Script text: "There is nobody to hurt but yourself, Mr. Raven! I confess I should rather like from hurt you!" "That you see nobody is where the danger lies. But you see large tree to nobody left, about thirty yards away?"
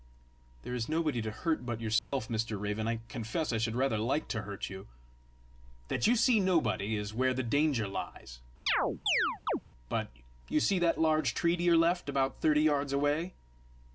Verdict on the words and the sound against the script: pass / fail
fail